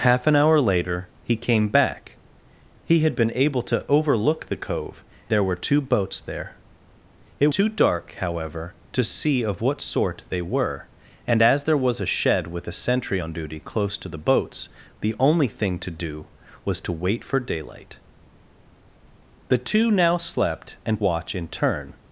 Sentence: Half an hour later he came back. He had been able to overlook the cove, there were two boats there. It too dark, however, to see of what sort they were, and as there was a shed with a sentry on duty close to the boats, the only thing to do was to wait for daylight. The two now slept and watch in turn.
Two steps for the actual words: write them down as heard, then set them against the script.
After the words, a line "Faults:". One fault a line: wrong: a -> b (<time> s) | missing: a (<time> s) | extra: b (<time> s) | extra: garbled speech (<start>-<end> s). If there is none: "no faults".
Half an hour later he came back. He had been able to overlook the cove, there were two boats there. It too dark, however, to see of what sort they were, and as there was a shed with a sentry on duty close to the boats, the only thing to do was to wait for daylight. The two now slept and watch in turn.
Faults:
no faults